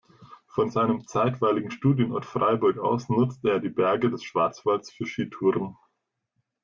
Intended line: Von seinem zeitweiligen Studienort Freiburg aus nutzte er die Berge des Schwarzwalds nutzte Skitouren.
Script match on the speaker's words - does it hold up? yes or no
no